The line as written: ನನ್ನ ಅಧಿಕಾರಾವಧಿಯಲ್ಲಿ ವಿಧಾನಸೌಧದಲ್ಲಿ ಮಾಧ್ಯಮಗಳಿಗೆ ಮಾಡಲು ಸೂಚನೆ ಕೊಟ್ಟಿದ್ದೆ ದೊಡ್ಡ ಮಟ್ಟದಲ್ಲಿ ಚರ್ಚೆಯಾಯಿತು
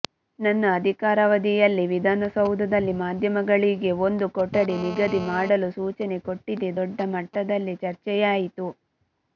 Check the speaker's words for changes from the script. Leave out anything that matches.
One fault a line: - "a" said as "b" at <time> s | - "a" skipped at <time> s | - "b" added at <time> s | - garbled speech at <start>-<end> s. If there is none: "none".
- "ಒಂದು ಕೊಠಡಿ ನಿಗದಿ" added at 4.1 s